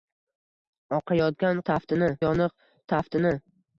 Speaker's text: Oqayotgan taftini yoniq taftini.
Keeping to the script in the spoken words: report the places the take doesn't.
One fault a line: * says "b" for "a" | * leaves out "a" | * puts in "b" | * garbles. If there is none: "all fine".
all fine